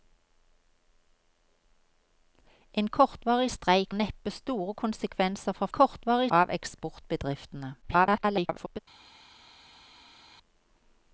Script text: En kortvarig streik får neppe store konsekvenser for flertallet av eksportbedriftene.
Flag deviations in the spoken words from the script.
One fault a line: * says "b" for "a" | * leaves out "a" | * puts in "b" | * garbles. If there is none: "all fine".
* leaves out "får"
* says "kortvarig" for "flertallet"
* garbles